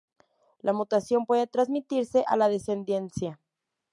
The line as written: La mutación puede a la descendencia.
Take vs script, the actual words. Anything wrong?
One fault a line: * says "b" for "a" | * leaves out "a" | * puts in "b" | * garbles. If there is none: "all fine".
* puts in "transmitirse"